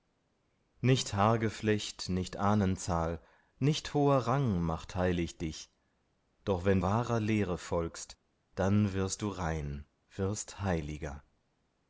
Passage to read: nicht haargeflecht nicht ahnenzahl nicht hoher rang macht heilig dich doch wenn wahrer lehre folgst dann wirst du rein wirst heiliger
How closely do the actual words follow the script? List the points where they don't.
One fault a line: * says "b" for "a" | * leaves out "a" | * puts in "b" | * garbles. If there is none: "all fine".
all fine